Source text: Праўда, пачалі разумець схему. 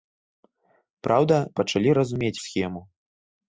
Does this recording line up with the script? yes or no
yes